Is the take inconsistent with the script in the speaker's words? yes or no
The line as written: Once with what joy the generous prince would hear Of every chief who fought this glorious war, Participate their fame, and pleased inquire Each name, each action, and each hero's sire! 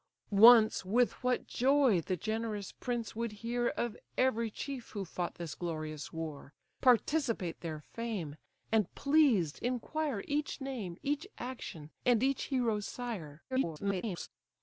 yes